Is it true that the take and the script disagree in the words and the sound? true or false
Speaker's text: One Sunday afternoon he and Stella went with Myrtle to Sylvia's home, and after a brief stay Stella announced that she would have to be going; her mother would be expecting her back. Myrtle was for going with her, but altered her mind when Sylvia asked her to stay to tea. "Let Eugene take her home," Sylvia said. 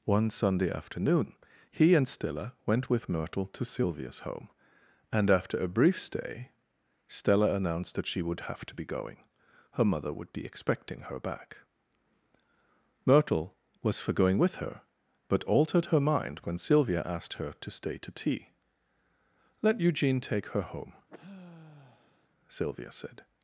true